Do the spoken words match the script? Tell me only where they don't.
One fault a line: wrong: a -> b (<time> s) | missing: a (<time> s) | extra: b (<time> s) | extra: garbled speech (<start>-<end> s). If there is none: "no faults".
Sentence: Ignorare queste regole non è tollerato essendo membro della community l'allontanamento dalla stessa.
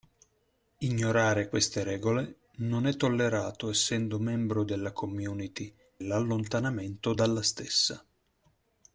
no faults